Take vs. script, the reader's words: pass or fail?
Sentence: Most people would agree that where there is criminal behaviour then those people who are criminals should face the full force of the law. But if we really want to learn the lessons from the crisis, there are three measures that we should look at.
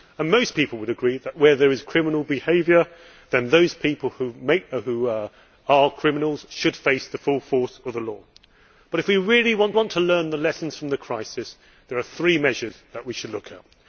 fail